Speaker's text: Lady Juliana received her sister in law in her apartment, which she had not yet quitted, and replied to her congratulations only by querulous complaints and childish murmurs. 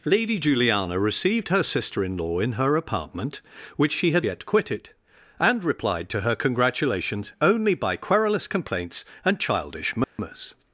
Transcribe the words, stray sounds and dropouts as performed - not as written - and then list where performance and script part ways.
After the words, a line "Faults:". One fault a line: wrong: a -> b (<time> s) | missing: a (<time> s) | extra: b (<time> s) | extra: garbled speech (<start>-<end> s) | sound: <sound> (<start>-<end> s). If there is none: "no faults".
Lady Juliana received her sister in law in her apartment, which she had yet quitted, and replied to her congratulations only by querulous complaints and childish murmurs.
Faults:
missing: not (4.2 s)
sound: dropout (10.0-10.2 s)